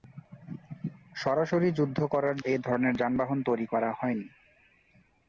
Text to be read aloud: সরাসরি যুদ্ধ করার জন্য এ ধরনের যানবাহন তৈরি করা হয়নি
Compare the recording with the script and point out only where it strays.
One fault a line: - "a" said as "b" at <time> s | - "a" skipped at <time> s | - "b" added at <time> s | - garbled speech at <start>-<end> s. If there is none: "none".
- "জন্য" skipped at 2.4 s